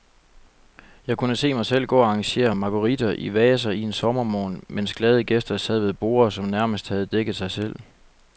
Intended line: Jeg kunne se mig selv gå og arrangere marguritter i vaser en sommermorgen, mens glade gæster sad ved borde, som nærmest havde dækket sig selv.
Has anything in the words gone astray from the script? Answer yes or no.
no